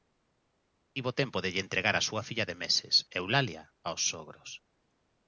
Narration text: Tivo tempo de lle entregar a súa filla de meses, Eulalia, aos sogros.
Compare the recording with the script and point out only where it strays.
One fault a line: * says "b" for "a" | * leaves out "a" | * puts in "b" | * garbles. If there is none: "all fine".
all fine